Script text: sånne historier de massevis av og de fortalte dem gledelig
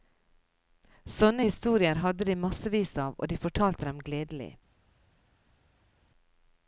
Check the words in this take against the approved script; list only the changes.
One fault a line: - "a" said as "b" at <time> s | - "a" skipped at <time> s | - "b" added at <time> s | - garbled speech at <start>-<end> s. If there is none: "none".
- "hadde" added at 2.0 s